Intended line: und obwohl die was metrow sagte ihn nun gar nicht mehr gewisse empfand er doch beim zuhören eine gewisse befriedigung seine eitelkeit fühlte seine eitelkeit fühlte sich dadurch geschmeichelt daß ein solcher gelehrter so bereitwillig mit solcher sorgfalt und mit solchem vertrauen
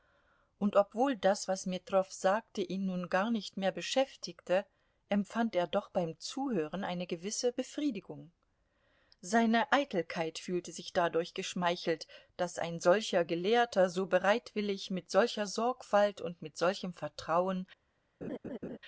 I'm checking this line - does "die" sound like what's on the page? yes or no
no